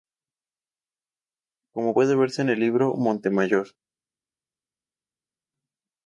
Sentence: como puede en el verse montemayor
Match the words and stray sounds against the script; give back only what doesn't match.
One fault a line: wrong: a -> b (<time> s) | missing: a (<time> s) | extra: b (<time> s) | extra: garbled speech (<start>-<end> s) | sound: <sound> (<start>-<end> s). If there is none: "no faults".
extra: verse (2.2 s)
wrong: verse -> libro (2.6 s)